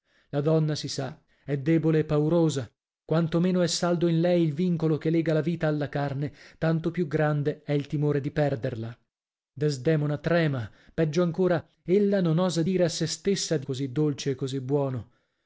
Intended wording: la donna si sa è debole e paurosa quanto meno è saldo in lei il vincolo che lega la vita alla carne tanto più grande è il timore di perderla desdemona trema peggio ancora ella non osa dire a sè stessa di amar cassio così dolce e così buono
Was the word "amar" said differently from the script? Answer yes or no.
yes